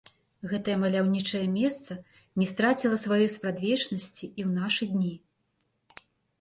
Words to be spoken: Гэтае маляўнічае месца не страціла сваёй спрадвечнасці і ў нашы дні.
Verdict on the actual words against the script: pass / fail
pass